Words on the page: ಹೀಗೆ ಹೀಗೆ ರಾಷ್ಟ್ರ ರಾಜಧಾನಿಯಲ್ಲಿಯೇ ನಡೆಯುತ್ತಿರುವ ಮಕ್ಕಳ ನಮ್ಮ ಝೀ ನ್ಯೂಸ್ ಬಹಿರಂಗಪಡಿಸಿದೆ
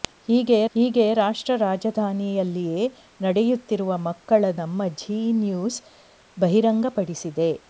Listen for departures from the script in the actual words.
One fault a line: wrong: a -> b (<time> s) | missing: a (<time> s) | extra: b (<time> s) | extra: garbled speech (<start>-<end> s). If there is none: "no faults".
no faults